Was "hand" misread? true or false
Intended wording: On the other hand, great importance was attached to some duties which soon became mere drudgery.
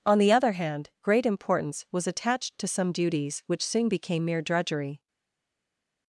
false